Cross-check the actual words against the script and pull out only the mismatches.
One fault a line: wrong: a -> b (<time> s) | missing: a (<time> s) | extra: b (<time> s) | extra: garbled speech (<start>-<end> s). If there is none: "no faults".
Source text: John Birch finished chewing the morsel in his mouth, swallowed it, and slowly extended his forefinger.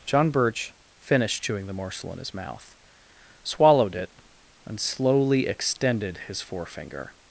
no faults